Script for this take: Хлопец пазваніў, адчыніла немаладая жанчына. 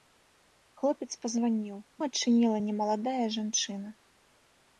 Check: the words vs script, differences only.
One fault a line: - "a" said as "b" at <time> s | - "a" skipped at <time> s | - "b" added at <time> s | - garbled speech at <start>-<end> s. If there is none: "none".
none